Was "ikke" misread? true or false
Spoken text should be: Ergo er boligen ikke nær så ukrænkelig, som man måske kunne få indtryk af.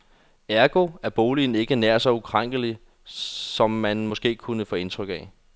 false